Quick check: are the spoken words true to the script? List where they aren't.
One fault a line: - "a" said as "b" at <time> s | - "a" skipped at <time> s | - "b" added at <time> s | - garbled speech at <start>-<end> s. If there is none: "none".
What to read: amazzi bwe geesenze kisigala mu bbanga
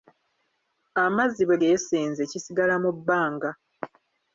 none